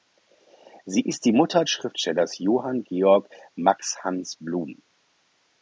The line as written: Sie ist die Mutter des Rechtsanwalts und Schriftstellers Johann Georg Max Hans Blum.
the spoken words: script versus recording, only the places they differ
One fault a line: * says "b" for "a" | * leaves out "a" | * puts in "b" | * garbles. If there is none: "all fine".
* leaves out "des Rechtsanwalts und"